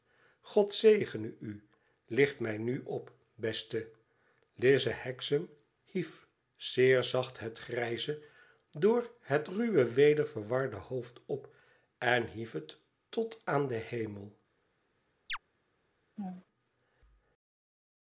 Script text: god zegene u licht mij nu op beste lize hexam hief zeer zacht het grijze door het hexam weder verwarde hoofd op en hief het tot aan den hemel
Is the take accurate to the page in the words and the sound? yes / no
no